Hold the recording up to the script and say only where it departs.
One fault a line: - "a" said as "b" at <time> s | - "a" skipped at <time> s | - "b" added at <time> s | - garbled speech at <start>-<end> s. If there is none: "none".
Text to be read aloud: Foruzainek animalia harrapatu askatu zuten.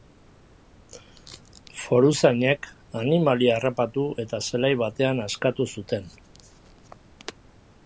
- "eta zelai batean" added at 4.3 s